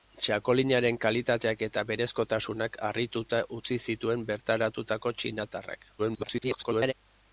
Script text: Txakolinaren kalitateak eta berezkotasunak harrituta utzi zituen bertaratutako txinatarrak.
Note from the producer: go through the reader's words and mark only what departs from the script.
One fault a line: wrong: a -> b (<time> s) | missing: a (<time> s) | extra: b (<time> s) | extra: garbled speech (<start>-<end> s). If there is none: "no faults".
extra: garbled speech (6.0-6.9 s)